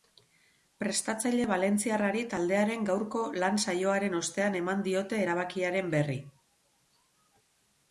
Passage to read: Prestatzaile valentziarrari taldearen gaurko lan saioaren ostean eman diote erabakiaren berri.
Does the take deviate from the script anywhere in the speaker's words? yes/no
no